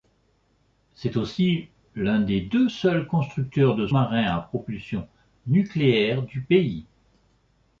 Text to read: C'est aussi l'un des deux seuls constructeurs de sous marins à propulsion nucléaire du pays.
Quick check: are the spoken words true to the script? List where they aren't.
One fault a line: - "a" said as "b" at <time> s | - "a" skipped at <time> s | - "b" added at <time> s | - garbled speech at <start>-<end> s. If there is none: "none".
- "sous" skipped at 3.9 s